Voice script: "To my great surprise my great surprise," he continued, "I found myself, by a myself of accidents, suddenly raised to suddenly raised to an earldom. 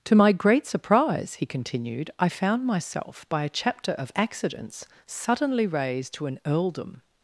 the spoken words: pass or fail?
fail